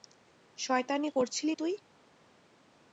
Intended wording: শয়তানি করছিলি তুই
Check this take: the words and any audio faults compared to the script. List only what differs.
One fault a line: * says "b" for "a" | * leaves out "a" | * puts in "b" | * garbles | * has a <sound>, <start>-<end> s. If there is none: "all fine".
all fine